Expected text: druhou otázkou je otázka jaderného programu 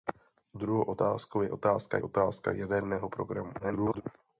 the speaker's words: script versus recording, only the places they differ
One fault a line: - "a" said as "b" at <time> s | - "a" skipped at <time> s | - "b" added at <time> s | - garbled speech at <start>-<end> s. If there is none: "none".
- "otázka" added at 2.0 s
- garbled speech at 3.6-4.0 s